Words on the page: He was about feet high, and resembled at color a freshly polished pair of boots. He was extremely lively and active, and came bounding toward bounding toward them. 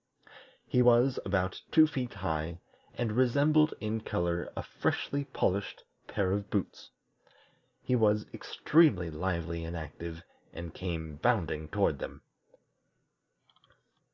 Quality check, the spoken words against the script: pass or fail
fail